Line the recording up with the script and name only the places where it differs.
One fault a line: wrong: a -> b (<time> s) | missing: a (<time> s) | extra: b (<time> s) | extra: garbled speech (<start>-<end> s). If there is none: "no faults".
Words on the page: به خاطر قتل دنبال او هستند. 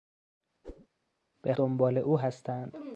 missing: خاطر قتل (1.5 s)